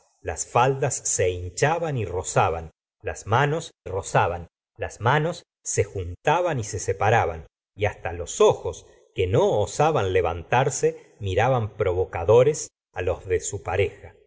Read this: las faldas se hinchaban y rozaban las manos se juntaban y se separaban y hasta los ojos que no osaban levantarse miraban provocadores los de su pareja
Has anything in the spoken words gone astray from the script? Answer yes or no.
yes